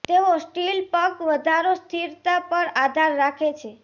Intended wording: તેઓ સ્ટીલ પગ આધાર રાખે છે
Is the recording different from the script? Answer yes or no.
yes